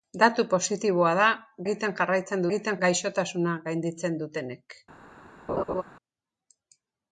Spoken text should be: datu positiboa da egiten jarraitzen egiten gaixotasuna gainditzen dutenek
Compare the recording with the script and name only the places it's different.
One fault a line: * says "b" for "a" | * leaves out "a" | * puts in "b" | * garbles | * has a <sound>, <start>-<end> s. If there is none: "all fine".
* has a laugh, 5.5-5.8 s